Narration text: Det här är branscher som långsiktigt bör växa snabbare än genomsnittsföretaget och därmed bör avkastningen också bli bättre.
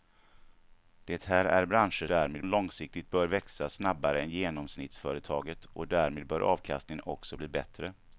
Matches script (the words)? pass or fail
fail